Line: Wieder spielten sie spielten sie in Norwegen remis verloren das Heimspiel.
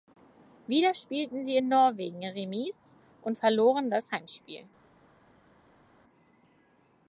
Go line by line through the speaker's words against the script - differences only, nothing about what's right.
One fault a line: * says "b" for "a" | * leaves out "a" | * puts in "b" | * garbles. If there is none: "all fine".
* leaves out "spielten sie"
* puts in "und"